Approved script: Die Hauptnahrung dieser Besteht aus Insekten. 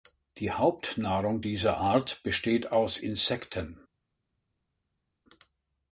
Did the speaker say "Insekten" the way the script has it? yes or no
yes